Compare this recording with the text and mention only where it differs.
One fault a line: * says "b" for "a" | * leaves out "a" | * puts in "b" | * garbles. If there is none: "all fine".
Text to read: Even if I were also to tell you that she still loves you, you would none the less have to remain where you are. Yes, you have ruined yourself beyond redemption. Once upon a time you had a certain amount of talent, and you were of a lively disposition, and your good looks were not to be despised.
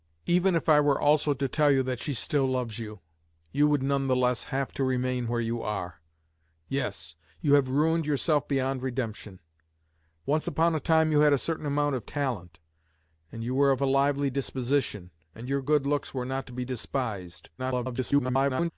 * garbles